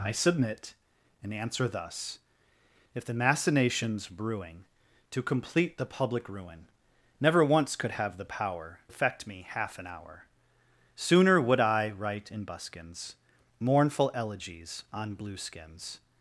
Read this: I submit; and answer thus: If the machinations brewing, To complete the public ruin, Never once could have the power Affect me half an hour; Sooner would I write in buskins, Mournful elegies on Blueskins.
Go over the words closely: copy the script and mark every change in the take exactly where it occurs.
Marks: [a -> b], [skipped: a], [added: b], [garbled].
I submit; and answer thus: If the machinations brewing, To complete the public ruin, Never once could have the power Affect me half an hour; Sooner would I write in buskins, Mournful elegies on Blueskins.